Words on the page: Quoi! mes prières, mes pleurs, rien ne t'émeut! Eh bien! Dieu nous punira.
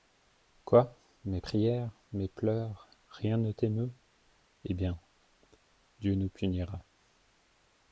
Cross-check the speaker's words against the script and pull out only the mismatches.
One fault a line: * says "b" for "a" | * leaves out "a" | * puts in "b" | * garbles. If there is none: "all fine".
all fine